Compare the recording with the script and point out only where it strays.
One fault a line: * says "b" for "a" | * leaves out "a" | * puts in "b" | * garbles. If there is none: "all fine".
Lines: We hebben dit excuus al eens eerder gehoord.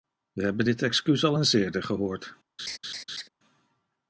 all fine